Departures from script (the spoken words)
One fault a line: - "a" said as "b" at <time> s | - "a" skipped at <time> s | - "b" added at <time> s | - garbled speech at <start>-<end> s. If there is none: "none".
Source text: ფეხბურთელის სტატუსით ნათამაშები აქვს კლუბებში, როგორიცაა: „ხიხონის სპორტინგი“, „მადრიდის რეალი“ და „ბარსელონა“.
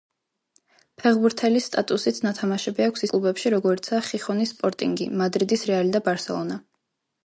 none